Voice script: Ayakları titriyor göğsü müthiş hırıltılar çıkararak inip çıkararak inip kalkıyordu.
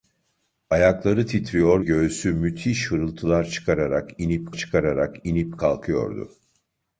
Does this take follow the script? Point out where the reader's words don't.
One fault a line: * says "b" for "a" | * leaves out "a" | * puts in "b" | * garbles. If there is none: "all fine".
all fine